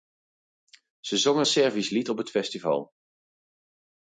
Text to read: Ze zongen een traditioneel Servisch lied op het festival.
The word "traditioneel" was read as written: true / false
false